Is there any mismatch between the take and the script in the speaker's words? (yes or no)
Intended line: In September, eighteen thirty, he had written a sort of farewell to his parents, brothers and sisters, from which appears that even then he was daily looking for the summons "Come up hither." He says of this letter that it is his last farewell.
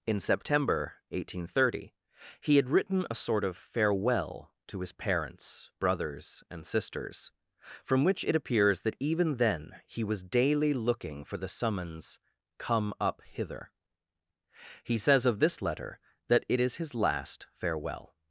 yes